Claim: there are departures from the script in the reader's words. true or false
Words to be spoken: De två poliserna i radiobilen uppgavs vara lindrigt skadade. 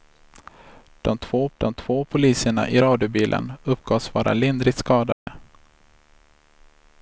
true